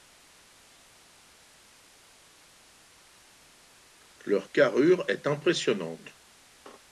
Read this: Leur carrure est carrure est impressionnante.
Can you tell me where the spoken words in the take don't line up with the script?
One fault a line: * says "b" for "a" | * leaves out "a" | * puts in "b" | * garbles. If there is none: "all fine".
* leaves out "carrure est"